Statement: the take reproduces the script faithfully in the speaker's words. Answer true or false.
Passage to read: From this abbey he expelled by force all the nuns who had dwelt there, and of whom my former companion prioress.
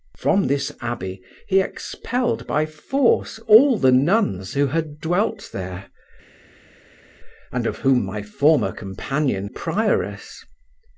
true